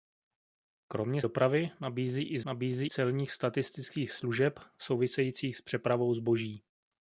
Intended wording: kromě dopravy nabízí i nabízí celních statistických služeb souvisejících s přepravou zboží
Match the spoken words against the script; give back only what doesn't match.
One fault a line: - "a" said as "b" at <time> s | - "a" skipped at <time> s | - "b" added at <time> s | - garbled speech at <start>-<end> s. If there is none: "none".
none